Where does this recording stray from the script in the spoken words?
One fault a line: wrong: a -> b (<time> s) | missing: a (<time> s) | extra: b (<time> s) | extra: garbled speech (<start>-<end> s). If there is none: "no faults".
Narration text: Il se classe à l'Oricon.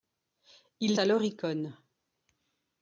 missing: se classe (1.0 s)